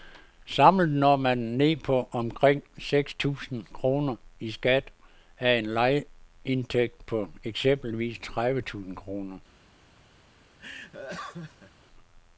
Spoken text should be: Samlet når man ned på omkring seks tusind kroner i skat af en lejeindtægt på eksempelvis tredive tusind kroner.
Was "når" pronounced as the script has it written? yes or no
yes